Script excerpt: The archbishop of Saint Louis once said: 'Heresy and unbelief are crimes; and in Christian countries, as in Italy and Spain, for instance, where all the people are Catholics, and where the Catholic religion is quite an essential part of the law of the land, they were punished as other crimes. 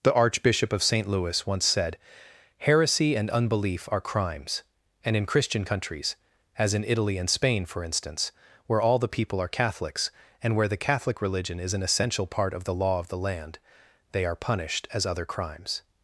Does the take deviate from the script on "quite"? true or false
true